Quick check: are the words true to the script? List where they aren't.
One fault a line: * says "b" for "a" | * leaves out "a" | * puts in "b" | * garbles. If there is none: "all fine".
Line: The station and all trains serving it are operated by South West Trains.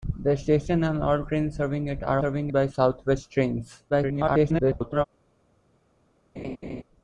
* says "serving" for "operated"
* garbles